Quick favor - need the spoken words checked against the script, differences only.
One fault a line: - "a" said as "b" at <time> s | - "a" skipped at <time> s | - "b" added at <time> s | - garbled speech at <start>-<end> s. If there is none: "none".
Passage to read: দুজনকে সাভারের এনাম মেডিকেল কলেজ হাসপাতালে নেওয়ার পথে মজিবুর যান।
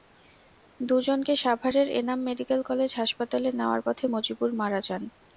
- "মারা" added at 4.6 s